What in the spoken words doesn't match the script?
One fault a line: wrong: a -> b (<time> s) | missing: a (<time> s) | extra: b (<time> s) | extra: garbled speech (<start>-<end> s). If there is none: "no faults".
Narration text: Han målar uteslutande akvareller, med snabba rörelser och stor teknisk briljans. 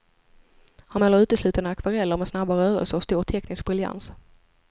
no faults